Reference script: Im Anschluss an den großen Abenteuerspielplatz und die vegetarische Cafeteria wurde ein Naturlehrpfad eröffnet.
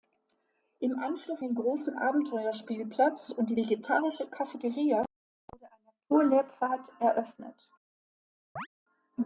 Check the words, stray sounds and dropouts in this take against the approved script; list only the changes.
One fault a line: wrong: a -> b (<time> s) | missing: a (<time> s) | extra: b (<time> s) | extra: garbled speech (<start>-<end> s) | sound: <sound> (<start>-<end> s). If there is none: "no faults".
missing: an (1.4 s)
sound: chirp (8.6-8.7 s)